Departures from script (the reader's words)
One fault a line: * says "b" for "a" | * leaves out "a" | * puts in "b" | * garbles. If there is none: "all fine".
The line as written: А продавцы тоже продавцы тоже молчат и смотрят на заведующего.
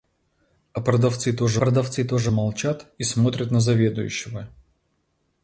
all fine